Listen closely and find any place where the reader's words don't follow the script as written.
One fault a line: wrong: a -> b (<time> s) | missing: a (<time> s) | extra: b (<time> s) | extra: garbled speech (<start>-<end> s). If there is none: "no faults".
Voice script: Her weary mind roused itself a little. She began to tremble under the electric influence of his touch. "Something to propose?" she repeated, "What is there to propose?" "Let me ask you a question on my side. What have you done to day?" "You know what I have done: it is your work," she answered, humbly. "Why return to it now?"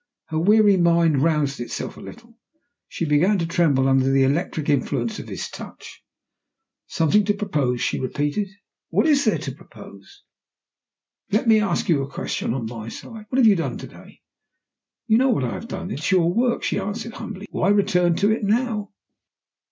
no faults